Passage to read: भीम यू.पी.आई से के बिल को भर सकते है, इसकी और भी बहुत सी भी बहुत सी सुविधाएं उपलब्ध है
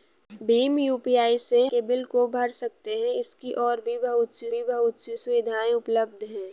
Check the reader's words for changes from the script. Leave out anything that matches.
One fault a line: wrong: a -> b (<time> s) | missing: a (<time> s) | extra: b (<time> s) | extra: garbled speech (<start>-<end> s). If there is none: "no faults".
no faults